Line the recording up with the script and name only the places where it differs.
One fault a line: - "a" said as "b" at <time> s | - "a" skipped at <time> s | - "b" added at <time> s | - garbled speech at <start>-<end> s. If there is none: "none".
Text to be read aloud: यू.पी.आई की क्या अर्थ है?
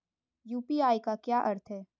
- "की" said as "का" at 1.0 s